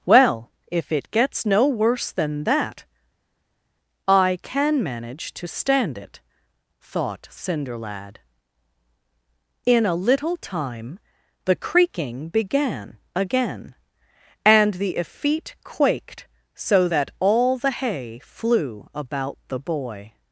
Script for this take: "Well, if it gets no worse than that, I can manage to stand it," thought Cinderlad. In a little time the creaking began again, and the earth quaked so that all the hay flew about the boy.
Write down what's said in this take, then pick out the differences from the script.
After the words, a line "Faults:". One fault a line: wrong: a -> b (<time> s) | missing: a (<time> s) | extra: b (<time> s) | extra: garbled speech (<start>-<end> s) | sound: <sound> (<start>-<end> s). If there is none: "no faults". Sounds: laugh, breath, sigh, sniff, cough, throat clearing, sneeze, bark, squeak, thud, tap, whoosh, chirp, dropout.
"Well, if it gets no worse than that, I can manage to stand it," thought Cinderlad. In a little time the creaking began again, and the effete quaked so that all the hay flew about the boy.
Faults:
wrong: earth -> effete (15.0 s)